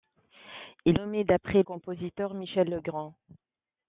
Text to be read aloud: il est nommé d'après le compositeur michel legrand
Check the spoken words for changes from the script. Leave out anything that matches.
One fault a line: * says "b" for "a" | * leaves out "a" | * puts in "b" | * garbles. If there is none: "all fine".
* leaves out "est"
* leaves out "le"